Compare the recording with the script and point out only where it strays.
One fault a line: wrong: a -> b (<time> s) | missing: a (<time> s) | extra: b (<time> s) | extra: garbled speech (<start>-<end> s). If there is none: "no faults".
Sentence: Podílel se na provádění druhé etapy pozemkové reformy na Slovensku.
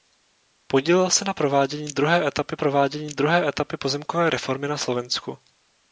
extra: provádění druhé etapy (2.5 s)